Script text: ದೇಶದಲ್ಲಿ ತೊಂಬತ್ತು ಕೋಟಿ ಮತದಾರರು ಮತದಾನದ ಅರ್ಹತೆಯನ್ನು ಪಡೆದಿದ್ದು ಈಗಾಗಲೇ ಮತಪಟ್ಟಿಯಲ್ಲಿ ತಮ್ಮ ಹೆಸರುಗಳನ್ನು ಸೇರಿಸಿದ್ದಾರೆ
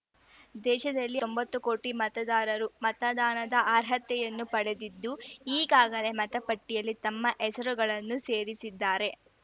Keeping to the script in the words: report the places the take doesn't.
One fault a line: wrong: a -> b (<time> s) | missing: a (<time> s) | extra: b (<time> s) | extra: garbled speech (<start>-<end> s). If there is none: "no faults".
no faults